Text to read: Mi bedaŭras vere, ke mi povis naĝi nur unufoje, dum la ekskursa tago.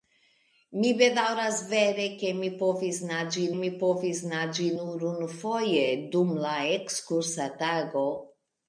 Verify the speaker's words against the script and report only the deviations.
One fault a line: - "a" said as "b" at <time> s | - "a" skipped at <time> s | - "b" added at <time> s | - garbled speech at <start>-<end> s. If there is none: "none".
- "mi povis naĝi" added at 3.6 s